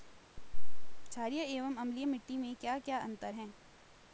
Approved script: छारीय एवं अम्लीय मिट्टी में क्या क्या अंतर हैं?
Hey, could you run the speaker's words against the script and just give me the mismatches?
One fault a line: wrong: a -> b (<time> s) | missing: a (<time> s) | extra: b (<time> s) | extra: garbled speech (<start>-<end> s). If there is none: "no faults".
no faults